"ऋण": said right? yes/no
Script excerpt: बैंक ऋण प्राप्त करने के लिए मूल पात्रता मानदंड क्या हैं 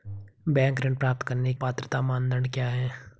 yes